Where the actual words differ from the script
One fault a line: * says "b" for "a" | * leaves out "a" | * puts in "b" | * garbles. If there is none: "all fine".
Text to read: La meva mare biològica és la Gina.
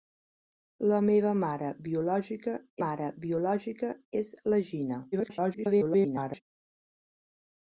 * puts in "mare biològica"
* garbles